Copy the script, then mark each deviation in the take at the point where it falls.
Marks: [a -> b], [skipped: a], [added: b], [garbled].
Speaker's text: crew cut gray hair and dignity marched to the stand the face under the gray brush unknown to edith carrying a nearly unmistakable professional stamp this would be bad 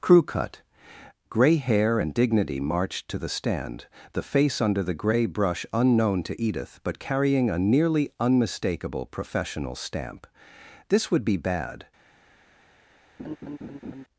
crew cut gray hair and dignity marched to the stand the face under the gray brush unknown to edith [added: but] carrying a nearly unmistakable professional stamp this would be bad